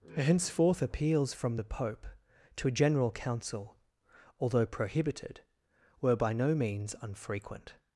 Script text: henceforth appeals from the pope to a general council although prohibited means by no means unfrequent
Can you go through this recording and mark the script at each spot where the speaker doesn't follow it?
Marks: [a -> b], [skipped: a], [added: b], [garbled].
henceforth appeals from the pope to a general council although prohibited [means -> were] by no means unfrequent